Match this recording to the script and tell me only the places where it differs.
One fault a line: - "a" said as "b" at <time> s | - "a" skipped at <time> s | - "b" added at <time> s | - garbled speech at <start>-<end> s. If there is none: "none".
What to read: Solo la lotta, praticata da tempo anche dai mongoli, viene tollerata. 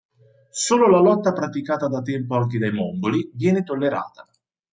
none